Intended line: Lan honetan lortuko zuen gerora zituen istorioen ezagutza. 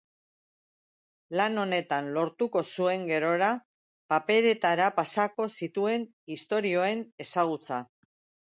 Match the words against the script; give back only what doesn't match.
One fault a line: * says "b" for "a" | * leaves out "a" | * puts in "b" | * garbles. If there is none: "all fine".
* puts in "paperetara pasako"